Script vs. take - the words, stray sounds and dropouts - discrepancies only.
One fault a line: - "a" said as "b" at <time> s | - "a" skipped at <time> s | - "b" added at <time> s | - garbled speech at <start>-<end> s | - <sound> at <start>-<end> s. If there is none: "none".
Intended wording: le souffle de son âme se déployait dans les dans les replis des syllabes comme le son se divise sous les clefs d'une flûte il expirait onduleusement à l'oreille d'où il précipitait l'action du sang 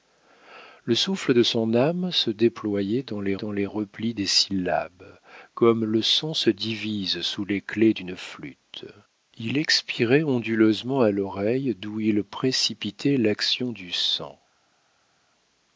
none